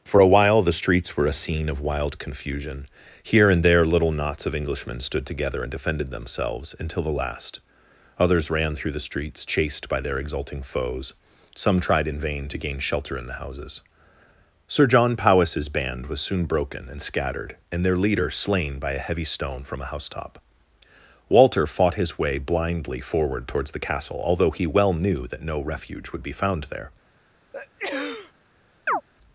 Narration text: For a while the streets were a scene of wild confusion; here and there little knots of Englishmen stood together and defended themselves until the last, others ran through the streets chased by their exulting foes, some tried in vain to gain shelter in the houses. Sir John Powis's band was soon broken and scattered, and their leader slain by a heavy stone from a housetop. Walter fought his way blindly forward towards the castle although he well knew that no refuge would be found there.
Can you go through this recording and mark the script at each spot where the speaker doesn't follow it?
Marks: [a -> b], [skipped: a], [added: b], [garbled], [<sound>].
For a while the streets were a scene of wild confusion; here and there little knots of Englishmen stood together and defended themselves until the last, others ran through the streets chased by their exulting foes, some tried in vain to gain shelter in the houses. Sir John Powis's band was soon broken and scattered, and their leader slain by a heavy stone from a housetop. Walter fought his way blindly forward towards the castle although he well knew that no refuge would be found there. [sneeze] [chirp]